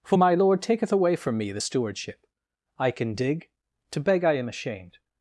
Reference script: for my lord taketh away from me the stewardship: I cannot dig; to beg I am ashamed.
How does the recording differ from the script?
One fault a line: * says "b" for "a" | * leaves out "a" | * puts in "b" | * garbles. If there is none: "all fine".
* says "can" for "cannot"